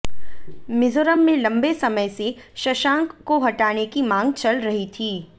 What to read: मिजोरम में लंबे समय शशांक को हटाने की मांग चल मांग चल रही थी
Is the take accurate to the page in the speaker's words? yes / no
no